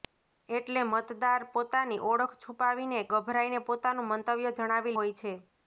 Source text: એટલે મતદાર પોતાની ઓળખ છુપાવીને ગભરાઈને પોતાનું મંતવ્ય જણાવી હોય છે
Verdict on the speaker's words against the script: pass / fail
pass